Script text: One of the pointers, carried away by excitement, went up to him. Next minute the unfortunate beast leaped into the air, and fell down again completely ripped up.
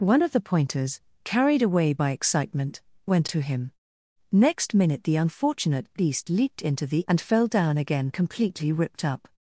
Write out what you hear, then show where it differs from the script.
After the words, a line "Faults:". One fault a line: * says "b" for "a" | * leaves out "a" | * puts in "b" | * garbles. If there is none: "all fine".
One of the pointers, carried away by excitement, went to him. Next minute the unfortunate beast leaped into the and fell down again completely ripped up.
Faults:
* leaves out "up"
* leaves out "air"